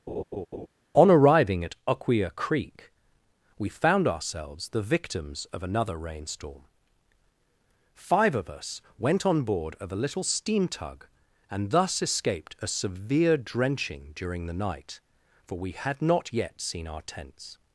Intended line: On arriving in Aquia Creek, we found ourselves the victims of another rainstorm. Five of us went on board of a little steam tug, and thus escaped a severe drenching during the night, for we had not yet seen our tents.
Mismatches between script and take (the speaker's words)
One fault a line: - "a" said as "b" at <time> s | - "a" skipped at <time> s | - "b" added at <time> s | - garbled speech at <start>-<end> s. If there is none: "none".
- "in" said as "at" at 1.6 s